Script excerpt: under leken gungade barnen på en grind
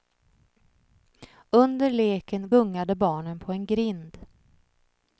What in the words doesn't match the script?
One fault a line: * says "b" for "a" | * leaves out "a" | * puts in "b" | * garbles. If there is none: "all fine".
all fine